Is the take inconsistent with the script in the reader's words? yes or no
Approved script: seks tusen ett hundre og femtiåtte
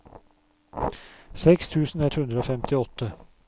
no